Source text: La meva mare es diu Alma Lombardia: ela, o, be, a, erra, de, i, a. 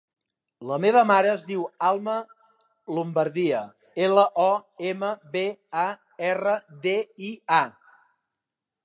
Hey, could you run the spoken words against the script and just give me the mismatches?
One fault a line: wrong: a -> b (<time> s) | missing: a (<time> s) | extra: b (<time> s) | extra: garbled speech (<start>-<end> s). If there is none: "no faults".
extra: ema (4.9 s)